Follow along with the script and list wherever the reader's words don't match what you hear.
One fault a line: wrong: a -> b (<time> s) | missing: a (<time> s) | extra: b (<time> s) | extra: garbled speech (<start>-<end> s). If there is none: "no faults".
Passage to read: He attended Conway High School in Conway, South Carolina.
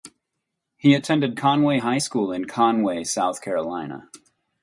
no faults